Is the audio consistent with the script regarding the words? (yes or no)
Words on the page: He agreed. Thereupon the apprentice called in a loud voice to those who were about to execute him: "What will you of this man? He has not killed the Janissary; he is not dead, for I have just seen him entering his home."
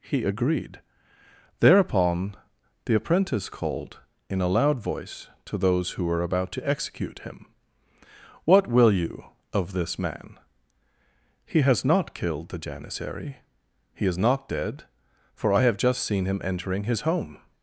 yes